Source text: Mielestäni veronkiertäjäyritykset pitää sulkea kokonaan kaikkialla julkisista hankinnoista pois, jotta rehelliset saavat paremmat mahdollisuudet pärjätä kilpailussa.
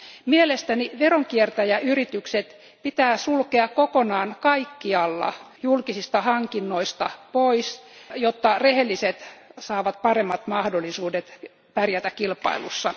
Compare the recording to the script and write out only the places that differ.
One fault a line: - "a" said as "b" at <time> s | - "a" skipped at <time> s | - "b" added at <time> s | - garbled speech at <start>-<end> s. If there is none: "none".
none